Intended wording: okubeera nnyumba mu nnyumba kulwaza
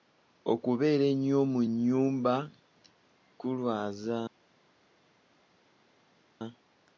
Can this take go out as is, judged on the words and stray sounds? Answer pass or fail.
fail